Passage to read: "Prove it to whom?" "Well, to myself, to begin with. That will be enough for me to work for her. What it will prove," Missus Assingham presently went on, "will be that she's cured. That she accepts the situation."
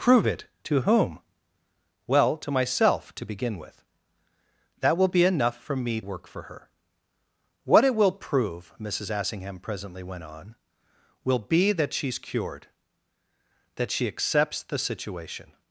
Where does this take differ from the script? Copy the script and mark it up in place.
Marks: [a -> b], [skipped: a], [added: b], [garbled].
"Prove it to whom?" "Well, to myself, to begin with. That will be enough for me [skipped: to] work for her. What it will prove," Missus Assingham presently went on, "will be that she's cured. That she accepts the situation."